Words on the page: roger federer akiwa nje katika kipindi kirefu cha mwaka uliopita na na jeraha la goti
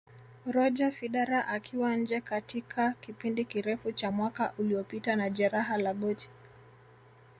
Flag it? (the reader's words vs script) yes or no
yes